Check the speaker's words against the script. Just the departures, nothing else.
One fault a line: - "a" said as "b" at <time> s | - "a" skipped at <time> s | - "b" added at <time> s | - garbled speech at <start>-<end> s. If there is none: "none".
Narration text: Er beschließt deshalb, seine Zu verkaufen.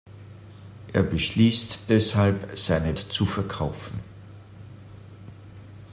none